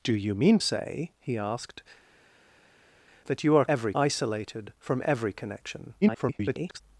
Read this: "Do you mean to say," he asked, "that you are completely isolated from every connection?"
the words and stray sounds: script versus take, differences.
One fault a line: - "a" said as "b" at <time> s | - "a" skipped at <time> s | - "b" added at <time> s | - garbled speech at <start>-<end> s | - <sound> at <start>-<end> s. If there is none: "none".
- "to" skipped at 0.6 s
- "completely" said as "every" at 3.7 s
- garbled speech at 6.0-6.8 s